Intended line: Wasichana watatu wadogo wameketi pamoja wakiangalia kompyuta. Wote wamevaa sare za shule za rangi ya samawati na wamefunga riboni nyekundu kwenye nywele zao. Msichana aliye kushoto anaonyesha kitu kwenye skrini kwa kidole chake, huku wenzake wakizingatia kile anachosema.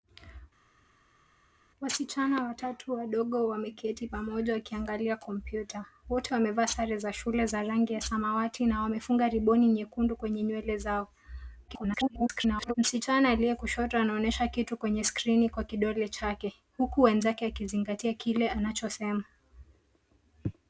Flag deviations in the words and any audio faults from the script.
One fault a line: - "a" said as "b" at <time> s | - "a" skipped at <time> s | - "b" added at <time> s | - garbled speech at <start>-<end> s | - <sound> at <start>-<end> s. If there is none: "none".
- garbled speech at 11.7-12.7 s